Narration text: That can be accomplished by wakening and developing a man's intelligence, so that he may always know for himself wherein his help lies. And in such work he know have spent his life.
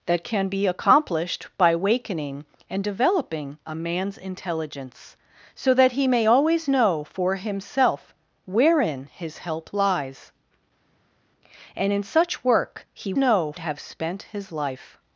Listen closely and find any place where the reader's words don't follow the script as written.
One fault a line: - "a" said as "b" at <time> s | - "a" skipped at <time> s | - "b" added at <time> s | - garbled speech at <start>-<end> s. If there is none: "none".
none